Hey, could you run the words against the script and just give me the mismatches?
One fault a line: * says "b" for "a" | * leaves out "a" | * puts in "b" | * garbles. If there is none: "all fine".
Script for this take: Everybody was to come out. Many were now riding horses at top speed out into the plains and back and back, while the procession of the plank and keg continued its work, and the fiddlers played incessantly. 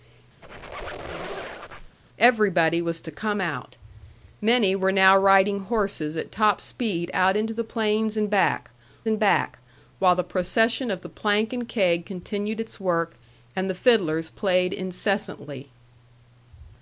all fine